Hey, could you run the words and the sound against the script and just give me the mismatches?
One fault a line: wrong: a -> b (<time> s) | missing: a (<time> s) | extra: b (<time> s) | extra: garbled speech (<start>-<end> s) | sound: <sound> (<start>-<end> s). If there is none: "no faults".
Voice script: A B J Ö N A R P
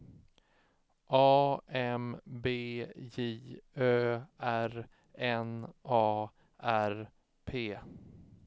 extra: M (1.7 s)
extra: R (4.4 s)